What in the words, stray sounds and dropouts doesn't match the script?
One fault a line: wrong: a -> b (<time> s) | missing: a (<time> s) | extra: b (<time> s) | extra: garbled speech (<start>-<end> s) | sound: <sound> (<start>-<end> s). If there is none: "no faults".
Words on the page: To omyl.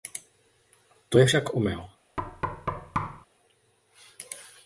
extra: je však (1.2 s)
sound: thud (2.2-3.3 s)